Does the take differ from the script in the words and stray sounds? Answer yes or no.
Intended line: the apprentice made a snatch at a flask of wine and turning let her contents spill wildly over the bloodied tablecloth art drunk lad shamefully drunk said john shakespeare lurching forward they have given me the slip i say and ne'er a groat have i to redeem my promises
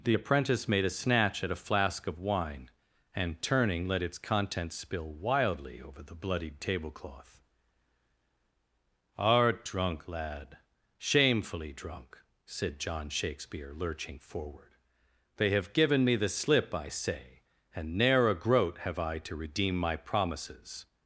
yes